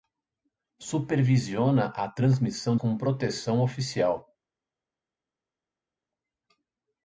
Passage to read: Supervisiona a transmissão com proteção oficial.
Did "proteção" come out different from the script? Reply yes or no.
no